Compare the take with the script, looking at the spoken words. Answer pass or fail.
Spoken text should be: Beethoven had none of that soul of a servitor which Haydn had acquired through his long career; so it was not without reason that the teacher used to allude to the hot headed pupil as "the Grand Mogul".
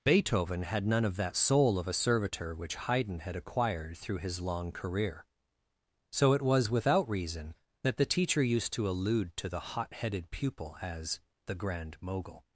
fail